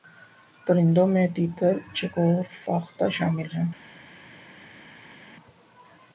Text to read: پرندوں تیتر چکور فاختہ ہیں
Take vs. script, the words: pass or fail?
fail